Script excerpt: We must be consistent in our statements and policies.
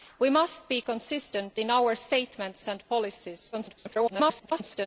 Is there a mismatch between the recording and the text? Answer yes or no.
yes